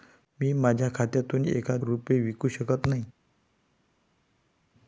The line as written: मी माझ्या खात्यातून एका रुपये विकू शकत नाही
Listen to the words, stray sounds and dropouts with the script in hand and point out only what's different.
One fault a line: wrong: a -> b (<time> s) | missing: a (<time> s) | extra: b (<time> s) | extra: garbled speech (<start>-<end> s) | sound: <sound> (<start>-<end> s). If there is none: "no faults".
no faults